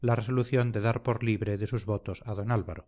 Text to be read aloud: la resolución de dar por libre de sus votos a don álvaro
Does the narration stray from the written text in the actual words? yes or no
no